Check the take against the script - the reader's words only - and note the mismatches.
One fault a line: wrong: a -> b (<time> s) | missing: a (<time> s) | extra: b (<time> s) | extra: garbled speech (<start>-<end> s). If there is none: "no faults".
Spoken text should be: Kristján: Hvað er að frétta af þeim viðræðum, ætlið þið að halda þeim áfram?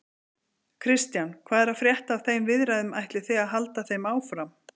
no faults